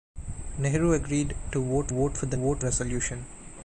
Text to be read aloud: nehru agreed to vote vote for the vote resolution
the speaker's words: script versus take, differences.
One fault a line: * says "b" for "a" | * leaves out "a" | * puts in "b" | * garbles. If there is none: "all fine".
all fine